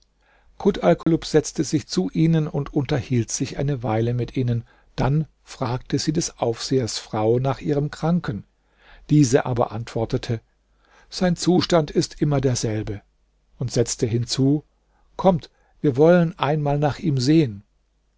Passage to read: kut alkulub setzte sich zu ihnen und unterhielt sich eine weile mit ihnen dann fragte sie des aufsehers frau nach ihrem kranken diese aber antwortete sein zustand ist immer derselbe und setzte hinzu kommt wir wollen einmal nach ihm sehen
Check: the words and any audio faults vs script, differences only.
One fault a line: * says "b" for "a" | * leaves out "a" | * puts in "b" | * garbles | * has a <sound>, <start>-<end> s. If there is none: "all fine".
* has a dropout, 1.0-1.1 s